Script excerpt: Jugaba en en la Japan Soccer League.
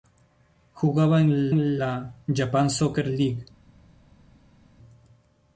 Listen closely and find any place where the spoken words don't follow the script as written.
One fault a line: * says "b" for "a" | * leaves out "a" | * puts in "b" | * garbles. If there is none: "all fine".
all fine